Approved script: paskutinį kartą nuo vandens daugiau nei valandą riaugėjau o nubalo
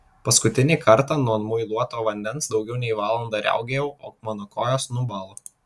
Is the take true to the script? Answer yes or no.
no